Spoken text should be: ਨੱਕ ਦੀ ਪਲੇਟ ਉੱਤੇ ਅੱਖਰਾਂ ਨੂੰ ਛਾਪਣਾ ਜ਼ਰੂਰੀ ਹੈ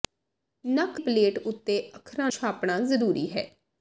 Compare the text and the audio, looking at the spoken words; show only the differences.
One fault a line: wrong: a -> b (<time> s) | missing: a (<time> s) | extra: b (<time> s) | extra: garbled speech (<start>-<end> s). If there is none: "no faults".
missing: ਦੀ (1.0 s)
missing: ਨੂੰ (2.3 s)